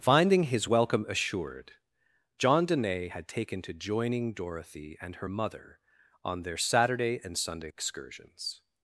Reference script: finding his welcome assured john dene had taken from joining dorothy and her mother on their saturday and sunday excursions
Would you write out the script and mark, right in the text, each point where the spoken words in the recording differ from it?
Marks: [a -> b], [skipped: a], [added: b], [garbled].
finding his welcome assured john dene had taken [from -> to] joining dorothy and her mother on their saturday and sunday excursions